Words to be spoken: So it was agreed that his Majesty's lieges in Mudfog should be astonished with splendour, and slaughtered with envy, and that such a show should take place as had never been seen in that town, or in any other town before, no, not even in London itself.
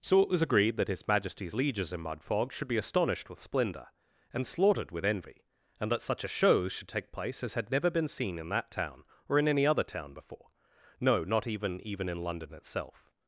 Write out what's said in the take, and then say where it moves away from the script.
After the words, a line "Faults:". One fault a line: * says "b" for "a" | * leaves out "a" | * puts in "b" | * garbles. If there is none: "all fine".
So it was agreed that his Majesty's lieges in Mudfog should be astonished with splendour, and slaughtered with envy, and that such a show should take place as had never been seen in that town, or in any other town before, no, not even even in London itself.
Faults:
* puts in "even"